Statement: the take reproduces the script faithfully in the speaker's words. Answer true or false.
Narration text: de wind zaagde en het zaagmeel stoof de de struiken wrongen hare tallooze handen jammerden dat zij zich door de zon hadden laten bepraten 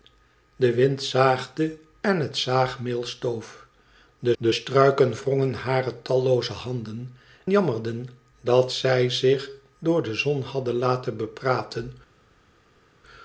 true